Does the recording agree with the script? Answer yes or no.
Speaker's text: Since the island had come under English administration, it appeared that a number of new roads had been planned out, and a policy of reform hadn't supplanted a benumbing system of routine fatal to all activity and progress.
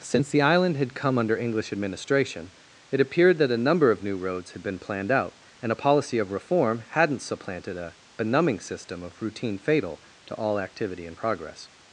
yes